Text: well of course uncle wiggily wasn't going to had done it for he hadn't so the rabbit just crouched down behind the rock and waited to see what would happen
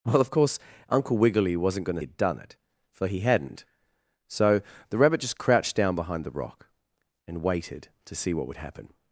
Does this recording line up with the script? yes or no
yes